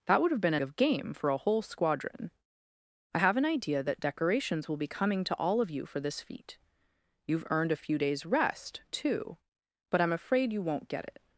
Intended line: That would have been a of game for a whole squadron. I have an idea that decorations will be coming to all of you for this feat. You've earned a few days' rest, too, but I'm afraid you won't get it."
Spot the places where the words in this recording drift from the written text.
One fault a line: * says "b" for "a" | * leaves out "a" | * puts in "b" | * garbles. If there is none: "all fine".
all fine